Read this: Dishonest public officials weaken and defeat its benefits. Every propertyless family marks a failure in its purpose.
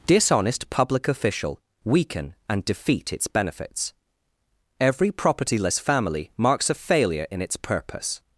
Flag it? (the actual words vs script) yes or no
yes